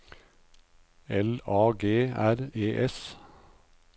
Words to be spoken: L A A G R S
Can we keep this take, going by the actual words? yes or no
no